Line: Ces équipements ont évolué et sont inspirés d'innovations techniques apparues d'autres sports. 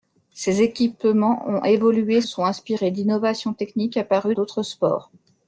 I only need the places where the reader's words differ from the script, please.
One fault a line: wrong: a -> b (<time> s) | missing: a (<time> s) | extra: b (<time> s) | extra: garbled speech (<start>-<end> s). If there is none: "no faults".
no faults